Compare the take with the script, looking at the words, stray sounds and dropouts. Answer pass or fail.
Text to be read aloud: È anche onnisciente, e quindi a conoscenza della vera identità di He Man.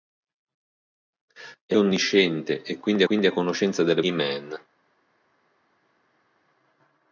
fail